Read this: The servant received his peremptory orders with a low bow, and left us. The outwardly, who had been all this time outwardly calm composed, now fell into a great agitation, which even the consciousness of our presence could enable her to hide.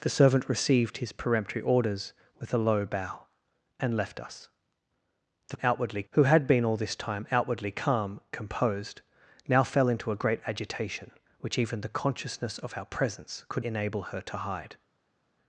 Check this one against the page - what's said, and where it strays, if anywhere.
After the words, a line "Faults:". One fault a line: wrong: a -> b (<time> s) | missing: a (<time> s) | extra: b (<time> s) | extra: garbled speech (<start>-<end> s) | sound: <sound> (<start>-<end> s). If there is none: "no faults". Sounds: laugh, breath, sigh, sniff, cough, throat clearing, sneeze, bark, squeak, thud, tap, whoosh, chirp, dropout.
The servant received his peremptory orders with a low bow, and left us. The outwardly, who had been all this time outwardly calm composed, now fell into a great agitation, which even the consciousness of our presence could enable her to hide.
Faults:
no faults